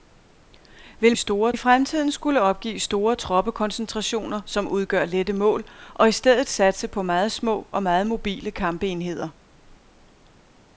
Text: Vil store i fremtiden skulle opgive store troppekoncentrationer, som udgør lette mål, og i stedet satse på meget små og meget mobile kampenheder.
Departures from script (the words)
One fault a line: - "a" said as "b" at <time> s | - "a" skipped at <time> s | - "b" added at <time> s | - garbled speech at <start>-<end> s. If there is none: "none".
none